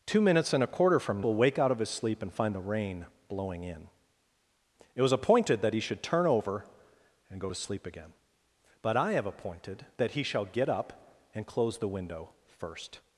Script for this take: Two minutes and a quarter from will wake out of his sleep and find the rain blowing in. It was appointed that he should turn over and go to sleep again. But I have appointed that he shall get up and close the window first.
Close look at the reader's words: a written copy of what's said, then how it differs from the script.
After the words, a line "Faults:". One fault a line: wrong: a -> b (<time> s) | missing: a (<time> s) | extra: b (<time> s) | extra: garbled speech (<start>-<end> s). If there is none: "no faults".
Two minutes and a quarter from will wake out of his sleep and find the rain blowing in. It was appointed that he should turn over and go to sleep again. But I have appointed that he shall get up and close the window first.
Faults:
no faults